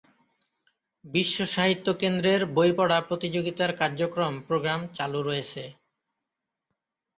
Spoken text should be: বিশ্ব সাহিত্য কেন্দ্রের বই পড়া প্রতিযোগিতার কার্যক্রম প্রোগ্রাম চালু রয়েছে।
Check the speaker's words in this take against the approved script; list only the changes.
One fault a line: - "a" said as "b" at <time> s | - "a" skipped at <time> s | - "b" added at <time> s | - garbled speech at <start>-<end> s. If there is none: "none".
none